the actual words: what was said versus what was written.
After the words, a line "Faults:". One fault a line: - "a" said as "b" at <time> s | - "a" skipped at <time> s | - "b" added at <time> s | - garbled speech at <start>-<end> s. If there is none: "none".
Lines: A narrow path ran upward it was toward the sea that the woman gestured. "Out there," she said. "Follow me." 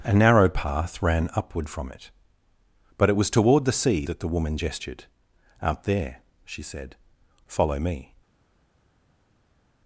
A narrow path ran upward from it but it was toward the sea that the woman gestured. "Out there," she said. "Follow me."
Faults:
- "from it but" added at 1.7 s